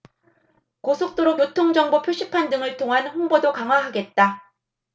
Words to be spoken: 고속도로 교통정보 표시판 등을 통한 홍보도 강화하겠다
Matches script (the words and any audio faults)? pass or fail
pass